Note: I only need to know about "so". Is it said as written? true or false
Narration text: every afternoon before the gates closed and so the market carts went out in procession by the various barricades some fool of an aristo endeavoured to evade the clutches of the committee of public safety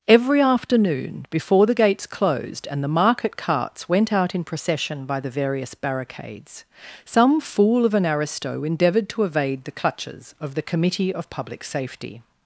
false